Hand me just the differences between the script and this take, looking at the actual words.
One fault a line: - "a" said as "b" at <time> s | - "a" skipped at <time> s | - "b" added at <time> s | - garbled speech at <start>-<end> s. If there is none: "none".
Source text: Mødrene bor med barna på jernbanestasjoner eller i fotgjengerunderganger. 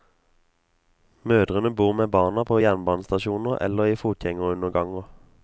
none